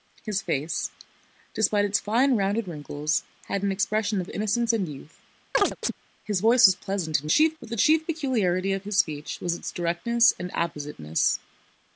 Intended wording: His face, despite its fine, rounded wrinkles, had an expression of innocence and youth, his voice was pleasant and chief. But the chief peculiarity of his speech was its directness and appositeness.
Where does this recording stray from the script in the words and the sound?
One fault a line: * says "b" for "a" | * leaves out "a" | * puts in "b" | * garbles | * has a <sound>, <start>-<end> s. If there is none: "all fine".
* has a chirp, 5.5-5.9 s